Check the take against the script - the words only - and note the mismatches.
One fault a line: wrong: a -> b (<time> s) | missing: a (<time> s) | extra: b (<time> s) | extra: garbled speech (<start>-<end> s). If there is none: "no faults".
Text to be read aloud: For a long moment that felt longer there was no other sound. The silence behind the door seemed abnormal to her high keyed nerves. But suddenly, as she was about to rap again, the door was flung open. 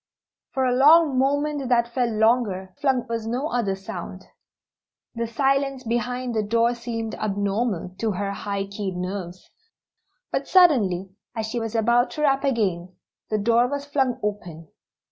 wrong: there -> flung (2.7 s)